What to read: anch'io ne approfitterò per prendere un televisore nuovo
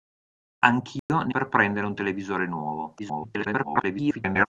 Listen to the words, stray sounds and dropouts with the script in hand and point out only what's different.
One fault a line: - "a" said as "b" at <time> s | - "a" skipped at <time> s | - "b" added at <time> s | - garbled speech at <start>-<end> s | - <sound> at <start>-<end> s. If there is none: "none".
- dropout at 1.0-1.1 s
- "approfitterò" skipped at 1.3 s
- garbled speech at 3.0-4.5 s